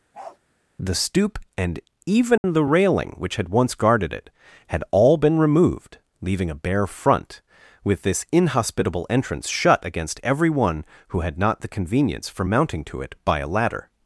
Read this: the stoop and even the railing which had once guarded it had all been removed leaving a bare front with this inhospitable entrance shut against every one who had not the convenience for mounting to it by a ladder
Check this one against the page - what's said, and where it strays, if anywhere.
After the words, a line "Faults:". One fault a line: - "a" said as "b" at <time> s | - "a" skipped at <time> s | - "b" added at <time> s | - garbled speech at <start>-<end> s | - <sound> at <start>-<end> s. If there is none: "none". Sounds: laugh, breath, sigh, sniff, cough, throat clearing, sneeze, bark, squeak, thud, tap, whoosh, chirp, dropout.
the stoop and even the railing which had once guarded it had all been removed leaving a bare front with this inhospitable entrance shut against every one who had not the convenience for mounting to it by a ladder
Faults:
- bark at 0.1-0.4 s
- dropout at 2.4-2.4 s